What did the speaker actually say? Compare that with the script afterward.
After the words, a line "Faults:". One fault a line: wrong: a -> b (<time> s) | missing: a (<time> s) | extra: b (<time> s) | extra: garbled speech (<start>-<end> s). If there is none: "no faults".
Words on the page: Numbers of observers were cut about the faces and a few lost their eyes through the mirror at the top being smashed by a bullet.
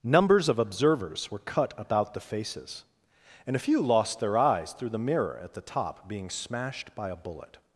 Numbers of observers were cut about the faces and a few lost their eyes through the mirror at the top being smashed by a bullet.
Faults:
no faults